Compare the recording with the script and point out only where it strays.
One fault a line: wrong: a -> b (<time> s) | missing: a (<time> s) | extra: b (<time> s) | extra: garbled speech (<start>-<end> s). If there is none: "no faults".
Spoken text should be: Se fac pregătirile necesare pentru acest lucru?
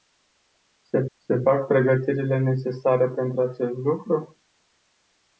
extra: se (1.2 s)